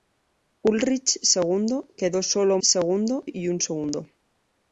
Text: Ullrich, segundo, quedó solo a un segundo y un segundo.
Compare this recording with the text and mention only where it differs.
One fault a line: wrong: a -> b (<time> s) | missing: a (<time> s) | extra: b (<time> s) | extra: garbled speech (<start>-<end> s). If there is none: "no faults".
no faults